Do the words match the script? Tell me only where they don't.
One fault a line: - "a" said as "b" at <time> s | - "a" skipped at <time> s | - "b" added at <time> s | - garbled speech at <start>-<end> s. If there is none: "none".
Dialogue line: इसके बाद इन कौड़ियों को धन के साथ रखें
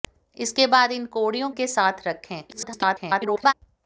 - "को धन" skipped at 1.5 s
- garbled speech at 2.5-3.5 s